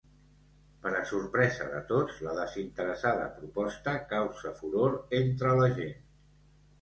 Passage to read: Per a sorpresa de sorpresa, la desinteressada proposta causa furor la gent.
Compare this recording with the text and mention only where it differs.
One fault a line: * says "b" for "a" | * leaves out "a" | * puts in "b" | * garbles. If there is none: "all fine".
* says "tots" for "sorpresa"
* puts in "entre"